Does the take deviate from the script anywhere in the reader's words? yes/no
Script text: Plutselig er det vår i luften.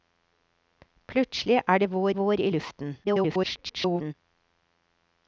yes